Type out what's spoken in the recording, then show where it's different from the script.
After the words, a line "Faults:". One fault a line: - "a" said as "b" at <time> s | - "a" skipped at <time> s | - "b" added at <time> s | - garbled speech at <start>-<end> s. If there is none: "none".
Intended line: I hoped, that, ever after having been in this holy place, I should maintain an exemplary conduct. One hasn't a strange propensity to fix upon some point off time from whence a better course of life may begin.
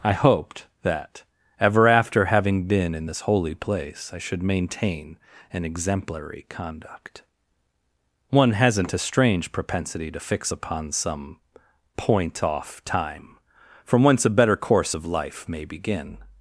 I hoped, that, ever after having been in this holy place, I should maintain an exemplary conduct. One hasn't a strange propensity to fix upon some point off time from whence a better course of life may begin.
Faults:
none